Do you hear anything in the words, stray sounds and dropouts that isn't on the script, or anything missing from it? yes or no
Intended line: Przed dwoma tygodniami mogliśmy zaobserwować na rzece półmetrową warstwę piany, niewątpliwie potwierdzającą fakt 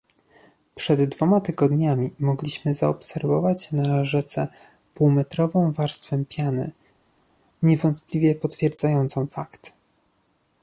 no